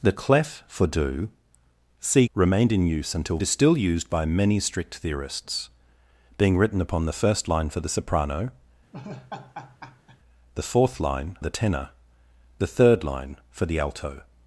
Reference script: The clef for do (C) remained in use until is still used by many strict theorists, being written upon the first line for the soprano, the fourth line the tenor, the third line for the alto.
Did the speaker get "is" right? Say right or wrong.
right